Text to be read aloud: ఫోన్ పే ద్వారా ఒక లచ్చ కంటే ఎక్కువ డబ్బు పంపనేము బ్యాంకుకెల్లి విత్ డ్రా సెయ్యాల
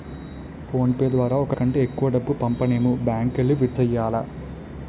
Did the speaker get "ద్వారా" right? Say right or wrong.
right